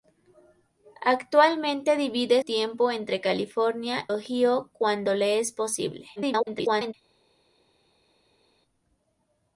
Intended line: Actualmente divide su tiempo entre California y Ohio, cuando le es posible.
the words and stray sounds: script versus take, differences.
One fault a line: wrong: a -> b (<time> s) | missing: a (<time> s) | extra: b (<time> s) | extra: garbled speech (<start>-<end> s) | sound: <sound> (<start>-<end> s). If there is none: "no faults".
missing: su (2.4 s)
missing: y (4.1 s)
extra: garbled speech (6.2-6.9 s)